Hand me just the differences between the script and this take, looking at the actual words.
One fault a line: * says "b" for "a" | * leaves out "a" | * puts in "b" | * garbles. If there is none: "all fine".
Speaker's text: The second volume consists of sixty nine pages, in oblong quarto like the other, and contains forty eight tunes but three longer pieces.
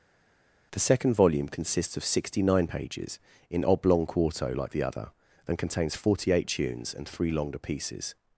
* says "and" for "but"